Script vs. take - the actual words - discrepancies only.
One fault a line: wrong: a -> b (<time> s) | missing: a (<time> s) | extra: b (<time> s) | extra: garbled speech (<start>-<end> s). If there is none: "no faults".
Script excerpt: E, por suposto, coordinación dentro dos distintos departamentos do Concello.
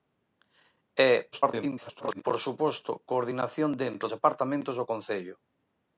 extra: garbled speech (1.3-2.2 s)
missing: dos distintos (4.1 s)